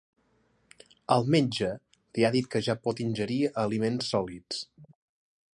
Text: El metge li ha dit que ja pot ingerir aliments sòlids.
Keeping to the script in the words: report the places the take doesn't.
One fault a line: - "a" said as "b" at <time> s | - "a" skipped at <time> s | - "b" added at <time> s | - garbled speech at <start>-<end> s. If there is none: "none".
none